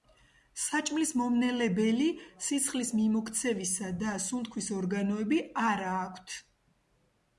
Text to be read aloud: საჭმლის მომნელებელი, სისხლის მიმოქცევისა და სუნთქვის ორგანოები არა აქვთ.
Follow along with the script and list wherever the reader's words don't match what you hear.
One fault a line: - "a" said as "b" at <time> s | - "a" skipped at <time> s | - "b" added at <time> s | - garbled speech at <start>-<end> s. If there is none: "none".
none